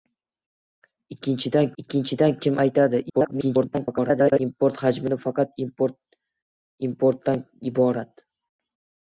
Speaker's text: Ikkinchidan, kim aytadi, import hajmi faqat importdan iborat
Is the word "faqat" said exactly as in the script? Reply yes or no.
yes